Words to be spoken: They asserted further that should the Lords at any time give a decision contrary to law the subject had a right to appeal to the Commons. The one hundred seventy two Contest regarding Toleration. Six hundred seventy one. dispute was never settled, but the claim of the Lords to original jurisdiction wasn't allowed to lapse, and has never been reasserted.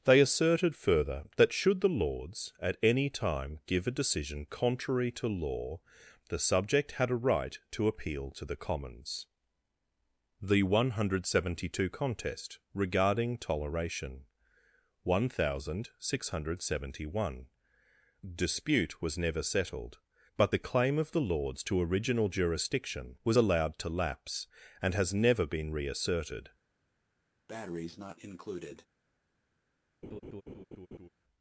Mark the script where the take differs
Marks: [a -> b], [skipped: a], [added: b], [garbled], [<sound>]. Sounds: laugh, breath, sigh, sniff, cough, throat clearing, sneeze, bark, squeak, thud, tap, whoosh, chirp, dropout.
They asserted further that should the Lords at any time give a decision contrary to law the subject had a right to appeal to the Commons. The one hundred seventy two Contest regarding Toleration. [added: One thousand] Six hundred seventy one. dispute was never settled, but the claim of the Lords to original jurisdiction [wasn't -> was] allowed to lapse, and has never been reasserted. [breath] [laugh]